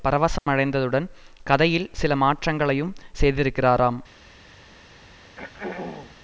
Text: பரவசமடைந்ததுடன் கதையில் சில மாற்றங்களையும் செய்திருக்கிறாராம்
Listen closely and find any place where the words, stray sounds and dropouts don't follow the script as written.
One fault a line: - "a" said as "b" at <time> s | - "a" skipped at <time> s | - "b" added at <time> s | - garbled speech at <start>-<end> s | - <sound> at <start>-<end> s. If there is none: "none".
- dropout at 0.4-0.5 s
- throat clearing at 5.2-6.2 s